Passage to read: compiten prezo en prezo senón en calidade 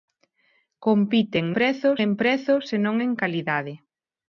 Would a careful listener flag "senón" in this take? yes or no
no